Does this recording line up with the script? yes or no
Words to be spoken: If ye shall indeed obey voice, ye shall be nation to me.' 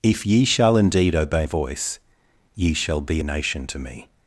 yes